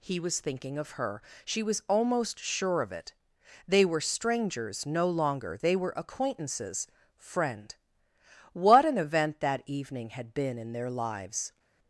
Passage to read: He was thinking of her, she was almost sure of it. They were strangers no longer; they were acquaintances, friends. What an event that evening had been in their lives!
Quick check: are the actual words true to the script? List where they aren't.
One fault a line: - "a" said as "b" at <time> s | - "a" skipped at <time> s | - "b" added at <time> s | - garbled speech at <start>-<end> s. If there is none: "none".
- "friends" said as "friend" at 7.2 s